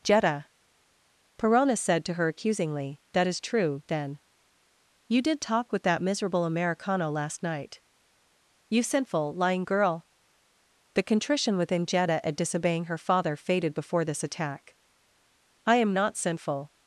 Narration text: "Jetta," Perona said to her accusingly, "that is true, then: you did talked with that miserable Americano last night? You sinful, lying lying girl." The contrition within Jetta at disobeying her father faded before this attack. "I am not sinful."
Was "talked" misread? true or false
true